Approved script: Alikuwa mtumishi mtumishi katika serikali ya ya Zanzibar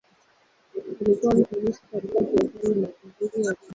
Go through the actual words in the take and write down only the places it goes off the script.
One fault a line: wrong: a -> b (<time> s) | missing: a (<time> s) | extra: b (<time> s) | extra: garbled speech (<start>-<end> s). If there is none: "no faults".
missing: mtumishi (1.8 s)
extra: mapinduzi (2.7 s)